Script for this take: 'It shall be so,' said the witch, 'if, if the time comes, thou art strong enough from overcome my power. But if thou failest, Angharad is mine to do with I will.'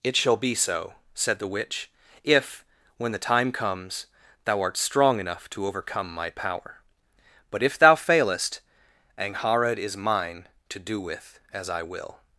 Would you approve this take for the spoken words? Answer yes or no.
no